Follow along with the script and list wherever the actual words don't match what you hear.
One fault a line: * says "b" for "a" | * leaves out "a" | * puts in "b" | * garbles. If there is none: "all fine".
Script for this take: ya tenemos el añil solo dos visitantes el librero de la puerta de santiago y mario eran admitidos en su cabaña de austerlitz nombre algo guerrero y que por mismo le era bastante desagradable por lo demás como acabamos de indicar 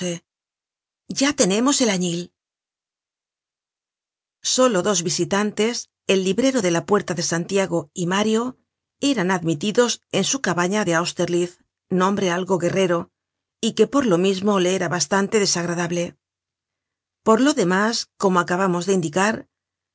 * puts in "lo"